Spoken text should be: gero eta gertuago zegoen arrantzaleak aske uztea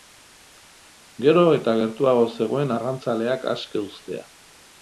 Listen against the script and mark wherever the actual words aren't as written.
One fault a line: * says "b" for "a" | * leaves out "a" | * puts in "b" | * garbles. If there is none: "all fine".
all fine